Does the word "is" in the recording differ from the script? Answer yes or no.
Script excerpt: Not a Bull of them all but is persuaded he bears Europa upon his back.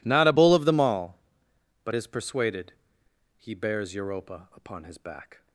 no